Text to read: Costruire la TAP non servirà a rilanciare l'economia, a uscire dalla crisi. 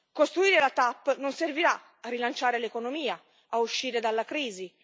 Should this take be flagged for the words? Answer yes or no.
no